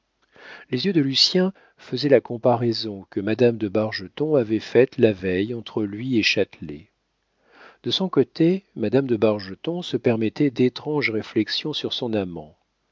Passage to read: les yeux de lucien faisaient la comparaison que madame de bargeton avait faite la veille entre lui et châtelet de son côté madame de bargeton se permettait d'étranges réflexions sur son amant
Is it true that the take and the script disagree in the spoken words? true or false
false